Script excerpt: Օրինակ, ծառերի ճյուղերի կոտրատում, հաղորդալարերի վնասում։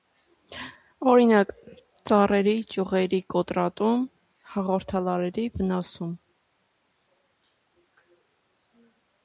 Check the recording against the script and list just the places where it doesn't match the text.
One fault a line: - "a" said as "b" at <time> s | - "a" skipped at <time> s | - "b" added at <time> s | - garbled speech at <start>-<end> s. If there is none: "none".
none